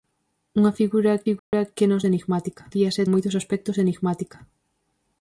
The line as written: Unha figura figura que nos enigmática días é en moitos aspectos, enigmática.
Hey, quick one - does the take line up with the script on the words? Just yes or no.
yes